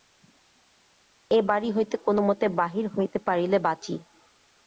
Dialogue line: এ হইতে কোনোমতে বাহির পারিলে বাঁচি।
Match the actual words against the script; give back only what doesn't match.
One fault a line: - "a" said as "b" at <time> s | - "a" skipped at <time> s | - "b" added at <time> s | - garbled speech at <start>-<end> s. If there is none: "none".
- "বাড়ি" added at 1.5 s
- "হইতে" added at 3.0 s